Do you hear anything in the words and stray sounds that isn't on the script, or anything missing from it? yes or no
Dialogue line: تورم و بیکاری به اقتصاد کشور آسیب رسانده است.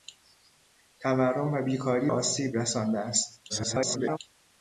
yes